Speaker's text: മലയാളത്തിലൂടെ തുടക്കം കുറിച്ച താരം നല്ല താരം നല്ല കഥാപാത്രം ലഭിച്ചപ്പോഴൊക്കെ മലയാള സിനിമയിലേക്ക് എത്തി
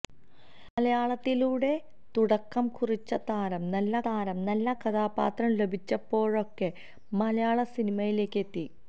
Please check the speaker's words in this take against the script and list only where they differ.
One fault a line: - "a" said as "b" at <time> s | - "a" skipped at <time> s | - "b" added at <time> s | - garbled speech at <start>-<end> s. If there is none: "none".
none